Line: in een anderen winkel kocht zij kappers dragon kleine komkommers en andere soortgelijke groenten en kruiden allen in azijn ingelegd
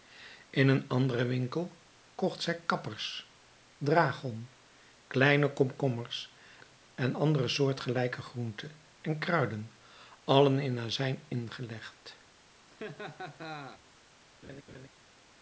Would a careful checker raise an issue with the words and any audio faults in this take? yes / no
yes